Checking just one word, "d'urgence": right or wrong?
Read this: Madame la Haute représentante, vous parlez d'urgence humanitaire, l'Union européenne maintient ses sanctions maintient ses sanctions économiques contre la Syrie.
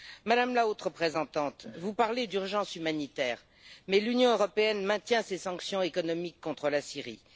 right